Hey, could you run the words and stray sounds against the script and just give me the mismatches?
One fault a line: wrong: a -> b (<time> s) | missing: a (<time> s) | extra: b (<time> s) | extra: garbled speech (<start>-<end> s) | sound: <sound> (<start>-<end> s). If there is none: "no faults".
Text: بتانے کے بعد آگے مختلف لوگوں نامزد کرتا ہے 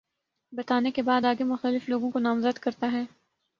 extra: کو (2.1 s)